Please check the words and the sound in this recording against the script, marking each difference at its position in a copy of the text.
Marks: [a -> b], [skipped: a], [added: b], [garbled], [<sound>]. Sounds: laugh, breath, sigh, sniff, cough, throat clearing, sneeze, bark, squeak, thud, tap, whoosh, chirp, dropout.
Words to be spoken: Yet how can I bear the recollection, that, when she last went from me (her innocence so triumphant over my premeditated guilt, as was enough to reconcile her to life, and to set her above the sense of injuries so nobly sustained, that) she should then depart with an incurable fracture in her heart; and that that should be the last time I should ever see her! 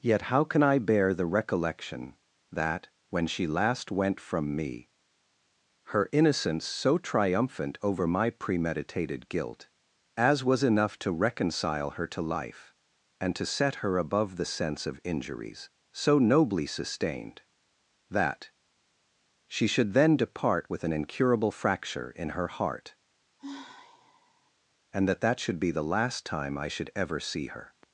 Yet how can I bear the recollection, that, when she last went from me (her innocence so triumphant over my premeditated guilt, as was enough to reconcile her to life, and to set her above the sense of injuries so nobly sustained, that) she should then depart with an incurable fracture in her heart; [sigh] and that that should be the last time I should ever see her!